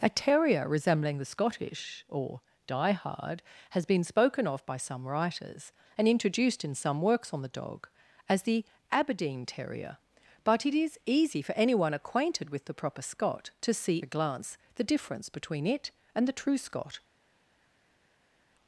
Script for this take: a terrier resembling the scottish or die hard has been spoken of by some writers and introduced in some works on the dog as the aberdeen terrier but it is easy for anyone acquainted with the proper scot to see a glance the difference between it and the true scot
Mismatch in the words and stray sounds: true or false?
false